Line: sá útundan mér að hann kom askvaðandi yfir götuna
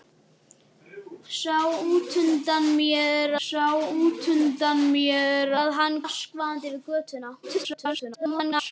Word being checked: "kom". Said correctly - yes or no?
no